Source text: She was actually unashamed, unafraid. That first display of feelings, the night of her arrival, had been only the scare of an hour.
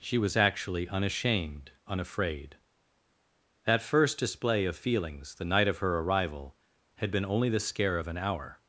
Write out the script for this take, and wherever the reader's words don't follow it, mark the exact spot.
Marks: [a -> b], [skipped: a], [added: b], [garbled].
She was actually unashamed, unafraid. That first display of feelings, the night of her arrival, had been only the scare of an hour.